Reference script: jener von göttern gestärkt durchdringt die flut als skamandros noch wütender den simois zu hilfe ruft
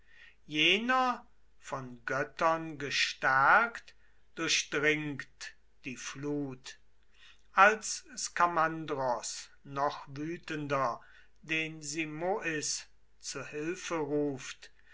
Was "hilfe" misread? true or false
false